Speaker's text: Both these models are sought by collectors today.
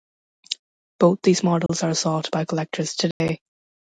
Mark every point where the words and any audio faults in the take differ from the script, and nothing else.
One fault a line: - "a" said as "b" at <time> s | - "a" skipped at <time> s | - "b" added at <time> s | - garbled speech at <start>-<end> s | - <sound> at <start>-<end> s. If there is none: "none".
- dropout at 1.7-1.7 s
- dropout at 3.1-3.2 s